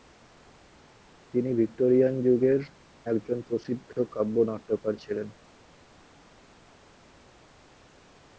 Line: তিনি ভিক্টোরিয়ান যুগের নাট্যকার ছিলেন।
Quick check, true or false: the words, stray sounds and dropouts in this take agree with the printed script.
false